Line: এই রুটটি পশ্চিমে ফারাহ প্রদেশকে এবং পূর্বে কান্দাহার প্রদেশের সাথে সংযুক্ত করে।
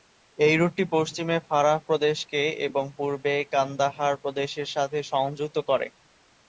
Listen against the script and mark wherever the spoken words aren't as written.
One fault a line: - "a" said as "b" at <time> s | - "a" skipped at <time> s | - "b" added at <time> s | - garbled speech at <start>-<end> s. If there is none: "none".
none